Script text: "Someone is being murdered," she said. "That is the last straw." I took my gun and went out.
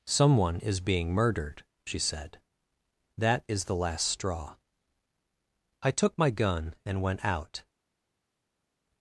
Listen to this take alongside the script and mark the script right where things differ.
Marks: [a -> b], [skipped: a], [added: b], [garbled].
"Someone is being murdered," she said. "That is the last straw." I took my gun and went out.